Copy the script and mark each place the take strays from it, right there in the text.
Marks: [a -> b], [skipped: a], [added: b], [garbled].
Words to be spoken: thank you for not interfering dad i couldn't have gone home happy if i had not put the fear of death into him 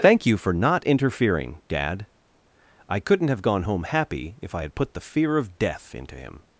thank you for not interfering dad i couldn't have gone home happy if i had [skipped: not] put the fear of death into him